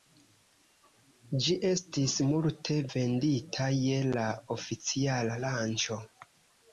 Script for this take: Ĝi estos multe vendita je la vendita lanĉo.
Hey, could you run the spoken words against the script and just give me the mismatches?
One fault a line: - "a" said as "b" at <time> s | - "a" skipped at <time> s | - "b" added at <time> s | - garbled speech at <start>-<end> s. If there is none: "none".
- "estos" said as "estis" at 1.7 s
- "vendita" said as "oficiala" at 4.6 s